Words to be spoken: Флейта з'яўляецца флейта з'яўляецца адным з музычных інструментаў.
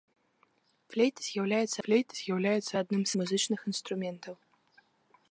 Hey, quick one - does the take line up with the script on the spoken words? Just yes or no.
yes